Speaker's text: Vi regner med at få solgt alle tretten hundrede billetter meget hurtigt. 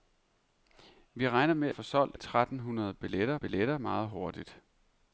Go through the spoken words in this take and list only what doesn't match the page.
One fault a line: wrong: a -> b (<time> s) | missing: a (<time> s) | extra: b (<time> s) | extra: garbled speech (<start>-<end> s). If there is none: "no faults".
missing: at (1.7 s)
missing: alle (2.2 s)
extra: billetter (3.3 s)